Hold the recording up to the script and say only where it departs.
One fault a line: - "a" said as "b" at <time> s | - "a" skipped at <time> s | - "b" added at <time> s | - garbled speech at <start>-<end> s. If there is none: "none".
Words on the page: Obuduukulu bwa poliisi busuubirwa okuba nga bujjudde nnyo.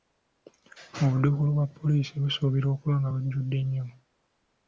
none